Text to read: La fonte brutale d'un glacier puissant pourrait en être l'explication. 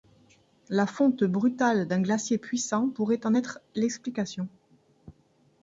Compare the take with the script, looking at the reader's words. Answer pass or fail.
pass